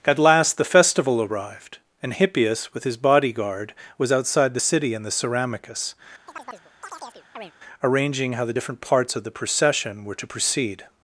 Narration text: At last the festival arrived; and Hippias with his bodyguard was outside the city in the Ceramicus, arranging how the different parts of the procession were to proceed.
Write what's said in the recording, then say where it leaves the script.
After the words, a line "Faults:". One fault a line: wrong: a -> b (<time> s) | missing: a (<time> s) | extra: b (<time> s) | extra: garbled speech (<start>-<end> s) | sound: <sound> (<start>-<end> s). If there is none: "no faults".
At last the festival arrived; and Hippias with his bodyguard was outside the city in the Ceramicus, arranging how the different parts of the procession were to proceed.
Faults:
sound: chirp (6.3-7.5 s)